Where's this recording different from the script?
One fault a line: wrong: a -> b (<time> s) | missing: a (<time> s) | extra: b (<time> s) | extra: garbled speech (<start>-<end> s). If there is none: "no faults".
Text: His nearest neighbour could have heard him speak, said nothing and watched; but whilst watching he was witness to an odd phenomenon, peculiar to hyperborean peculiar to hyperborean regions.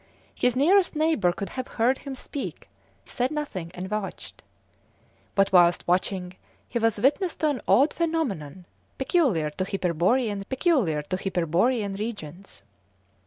no faults